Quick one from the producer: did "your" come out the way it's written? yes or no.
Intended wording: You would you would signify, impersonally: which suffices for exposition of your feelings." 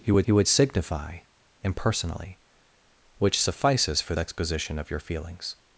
yes